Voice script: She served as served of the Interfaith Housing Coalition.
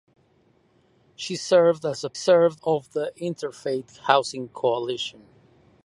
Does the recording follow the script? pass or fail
pass